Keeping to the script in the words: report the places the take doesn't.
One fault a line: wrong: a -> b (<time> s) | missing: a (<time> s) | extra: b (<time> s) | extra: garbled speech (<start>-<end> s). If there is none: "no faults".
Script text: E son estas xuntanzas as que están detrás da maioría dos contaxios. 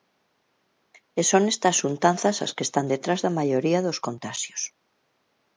no faults